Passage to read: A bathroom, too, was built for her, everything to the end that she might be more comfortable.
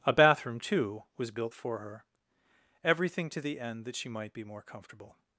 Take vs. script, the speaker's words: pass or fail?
pass